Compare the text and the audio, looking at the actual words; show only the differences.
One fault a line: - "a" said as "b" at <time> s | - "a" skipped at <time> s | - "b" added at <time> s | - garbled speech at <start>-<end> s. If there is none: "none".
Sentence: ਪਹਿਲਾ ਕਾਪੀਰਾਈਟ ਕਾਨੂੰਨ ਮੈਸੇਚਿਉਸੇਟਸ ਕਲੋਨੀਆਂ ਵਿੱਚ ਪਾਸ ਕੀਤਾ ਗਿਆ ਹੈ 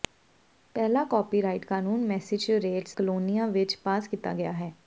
none